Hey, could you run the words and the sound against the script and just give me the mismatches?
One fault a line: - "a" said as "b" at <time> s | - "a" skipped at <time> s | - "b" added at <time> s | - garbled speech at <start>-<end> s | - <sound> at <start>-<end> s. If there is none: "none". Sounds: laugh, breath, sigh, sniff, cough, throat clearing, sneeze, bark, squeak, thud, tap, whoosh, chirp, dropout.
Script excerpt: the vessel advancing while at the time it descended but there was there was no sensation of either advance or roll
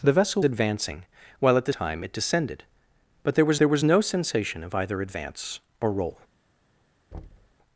- thud at 7.1-7.6 s